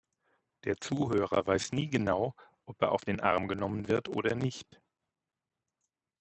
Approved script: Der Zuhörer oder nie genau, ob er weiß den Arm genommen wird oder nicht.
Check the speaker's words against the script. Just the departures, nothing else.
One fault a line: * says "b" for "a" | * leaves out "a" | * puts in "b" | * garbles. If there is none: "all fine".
* says "weiß" for "oder"
* says "auf" for "weiß"